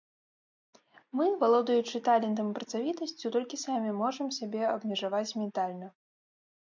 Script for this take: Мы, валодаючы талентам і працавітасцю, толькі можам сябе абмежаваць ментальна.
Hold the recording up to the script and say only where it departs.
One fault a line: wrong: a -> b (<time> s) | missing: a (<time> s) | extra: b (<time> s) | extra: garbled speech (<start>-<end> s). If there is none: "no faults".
extra: самі (3.7 s)